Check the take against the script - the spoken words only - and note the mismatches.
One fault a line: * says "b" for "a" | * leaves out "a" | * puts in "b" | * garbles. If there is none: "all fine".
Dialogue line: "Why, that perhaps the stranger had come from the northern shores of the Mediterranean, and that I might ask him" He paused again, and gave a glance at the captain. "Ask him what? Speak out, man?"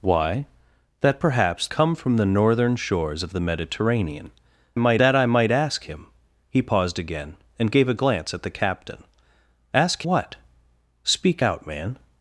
* leaves out "the stranger had"
* says "might" for "and"
* leaves out "him"